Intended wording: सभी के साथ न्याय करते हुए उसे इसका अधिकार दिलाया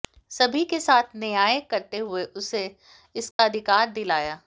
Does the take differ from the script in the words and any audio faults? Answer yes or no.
yes